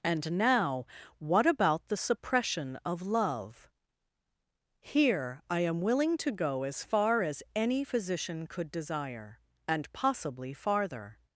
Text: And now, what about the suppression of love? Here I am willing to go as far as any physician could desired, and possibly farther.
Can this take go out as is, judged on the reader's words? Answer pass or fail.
fail